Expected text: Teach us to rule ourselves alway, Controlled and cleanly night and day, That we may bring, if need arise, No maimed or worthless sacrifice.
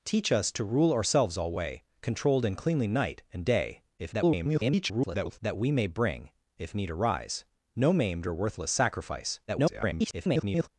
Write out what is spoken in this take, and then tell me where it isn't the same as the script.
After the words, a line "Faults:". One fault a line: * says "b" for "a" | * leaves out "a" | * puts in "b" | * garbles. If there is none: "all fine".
Teach us to rule ourselves alway, Controlled and cleanly night and day, [garbled] That we may bring, if need arise, No maimed or worthless sacrifice. [garbled]
Faults:
* garbles
* garbles